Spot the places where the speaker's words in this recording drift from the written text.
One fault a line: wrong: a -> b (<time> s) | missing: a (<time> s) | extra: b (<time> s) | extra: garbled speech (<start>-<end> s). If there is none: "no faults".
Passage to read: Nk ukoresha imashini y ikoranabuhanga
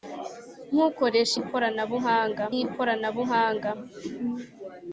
wrong: imashini -> ikoranabuhanga (1.4 s)